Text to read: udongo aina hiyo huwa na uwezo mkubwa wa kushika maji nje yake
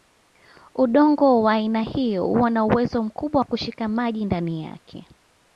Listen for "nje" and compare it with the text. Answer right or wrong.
wrong